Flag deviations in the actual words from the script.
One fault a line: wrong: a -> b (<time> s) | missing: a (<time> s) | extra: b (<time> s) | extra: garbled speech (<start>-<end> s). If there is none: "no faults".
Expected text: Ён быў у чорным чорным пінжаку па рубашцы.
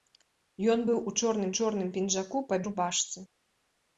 no faults